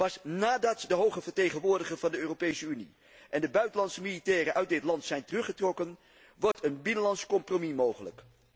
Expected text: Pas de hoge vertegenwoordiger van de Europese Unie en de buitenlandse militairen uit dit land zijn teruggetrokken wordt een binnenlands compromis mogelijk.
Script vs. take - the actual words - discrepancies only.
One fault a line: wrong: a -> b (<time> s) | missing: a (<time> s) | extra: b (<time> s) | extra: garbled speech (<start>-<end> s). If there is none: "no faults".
extra: nadat (0.2 s)